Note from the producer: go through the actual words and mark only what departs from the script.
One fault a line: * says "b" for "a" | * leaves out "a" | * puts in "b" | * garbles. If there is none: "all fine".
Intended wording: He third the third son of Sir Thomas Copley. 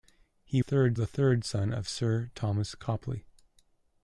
all fine